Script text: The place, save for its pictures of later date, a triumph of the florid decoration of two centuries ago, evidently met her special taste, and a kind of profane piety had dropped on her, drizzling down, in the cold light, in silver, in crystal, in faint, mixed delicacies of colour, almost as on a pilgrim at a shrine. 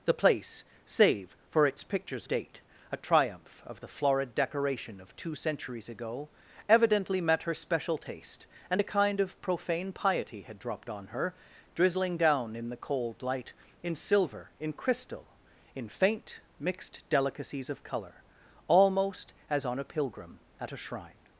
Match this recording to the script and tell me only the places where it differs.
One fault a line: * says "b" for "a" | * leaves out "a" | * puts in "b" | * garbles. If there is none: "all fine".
* leaves out "of later"